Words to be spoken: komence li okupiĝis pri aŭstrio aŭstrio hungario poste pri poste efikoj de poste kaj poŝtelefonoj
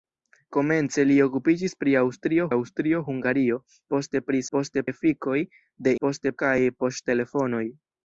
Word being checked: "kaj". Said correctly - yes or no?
yes